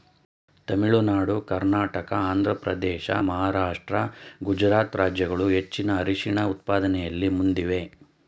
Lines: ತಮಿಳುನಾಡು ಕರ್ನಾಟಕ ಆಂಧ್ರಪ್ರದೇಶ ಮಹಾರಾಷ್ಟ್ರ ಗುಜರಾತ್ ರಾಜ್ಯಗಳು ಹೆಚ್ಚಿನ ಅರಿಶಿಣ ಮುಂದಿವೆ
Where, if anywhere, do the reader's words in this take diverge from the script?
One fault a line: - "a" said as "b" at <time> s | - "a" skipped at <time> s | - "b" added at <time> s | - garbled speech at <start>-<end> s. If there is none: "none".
- "ಉತ್ಪಾದನೆಯಲ್ಲಿ" added at 6.5 s